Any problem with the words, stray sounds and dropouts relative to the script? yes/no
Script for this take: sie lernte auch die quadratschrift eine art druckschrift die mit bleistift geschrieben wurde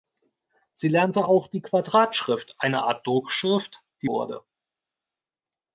yes